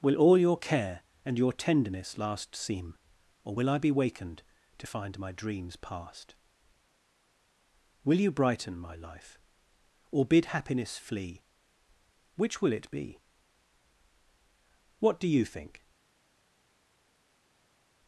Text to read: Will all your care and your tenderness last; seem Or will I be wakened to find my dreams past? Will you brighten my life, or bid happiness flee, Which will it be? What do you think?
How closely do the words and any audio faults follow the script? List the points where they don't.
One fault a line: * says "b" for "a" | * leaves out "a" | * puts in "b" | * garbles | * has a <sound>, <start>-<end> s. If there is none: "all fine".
all fine